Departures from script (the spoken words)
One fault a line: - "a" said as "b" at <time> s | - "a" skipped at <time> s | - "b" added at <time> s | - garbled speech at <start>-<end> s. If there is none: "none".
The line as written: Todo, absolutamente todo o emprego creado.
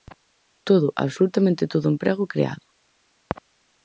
none